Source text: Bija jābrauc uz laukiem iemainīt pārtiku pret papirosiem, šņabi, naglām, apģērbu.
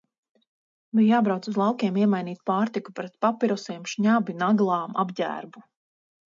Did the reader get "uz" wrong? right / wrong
right